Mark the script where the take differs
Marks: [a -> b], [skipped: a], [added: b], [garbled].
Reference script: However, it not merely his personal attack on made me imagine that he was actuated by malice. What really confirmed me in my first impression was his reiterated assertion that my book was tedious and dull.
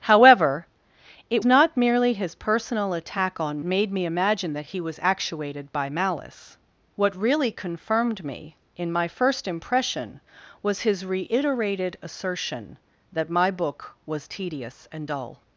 However, it not merely his personal attack on made me imagine that he was actuated by malice. What really confirmed me in my first impression was his reiterated assertion that my book was tedious and dull.